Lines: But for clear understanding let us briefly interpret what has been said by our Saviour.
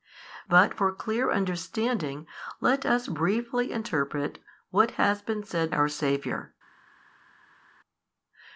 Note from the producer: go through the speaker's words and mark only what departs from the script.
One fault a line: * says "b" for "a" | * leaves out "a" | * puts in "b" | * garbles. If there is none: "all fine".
* leaves out "by"